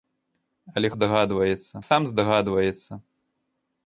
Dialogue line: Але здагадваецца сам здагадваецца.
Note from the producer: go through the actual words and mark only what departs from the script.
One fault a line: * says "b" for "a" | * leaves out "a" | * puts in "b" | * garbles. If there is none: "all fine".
all fine